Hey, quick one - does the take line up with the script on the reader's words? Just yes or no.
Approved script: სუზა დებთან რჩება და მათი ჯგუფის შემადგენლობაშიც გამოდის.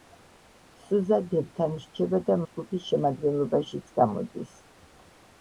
no